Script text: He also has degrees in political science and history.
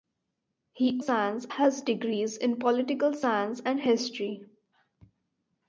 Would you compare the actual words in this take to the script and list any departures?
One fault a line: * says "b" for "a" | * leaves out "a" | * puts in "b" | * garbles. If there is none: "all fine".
* says "science" for "also"